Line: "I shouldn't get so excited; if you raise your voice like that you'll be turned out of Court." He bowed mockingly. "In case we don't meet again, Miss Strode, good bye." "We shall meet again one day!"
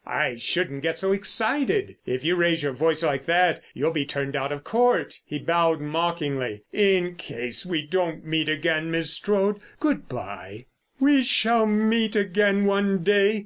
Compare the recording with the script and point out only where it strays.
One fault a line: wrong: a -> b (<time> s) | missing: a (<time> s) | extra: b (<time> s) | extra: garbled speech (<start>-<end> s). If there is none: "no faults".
no faults